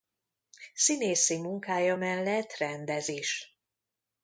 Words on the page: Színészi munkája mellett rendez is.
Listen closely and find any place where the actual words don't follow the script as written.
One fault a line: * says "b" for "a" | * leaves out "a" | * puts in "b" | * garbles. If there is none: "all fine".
all fine